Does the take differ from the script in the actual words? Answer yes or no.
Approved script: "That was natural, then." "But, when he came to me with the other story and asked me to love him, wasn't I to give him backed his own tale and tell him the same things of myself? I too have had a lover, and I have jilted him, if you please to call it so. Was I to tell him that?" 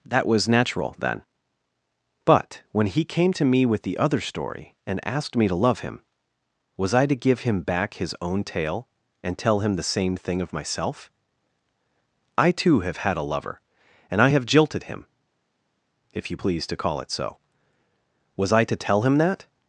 yes